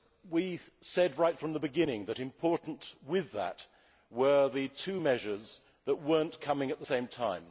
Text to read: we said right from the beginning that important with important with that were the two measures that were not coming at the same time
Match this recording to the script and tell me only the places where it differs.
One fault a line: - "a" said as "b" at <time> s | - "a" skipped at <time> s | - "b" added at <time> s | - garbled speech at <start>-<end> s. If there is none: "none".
- "important with" skipped at 3.3 s